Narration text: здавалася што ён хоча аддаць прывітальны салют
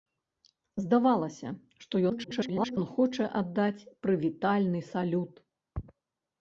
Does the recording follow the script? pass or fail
fail